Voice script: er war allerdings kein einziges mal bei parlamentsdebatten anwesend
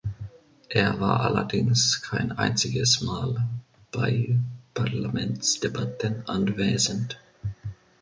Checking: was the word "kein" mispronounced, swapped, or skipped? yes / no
no